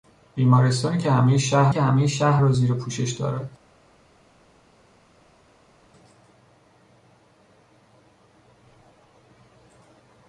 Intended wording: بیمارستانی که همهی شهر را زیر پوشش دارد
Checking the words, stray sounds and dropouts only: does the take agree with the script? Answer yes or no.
no